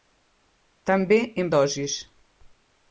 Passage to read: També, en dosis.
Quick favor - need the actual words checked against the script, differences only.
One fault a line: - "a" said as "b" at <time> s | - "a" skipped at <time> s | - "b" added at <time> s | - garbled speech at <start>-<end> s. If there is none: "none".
none